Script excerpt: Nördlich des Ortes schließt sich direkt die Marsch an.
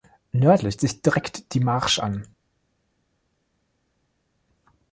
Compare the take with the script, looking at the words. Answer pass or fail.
fail